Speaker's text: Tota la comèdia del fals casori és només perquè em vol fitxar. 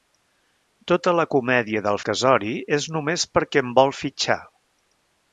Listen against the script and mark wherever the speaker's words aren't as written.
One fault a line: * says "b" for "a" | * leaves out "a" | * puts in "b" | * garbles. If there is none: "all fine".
* leaves out "fals"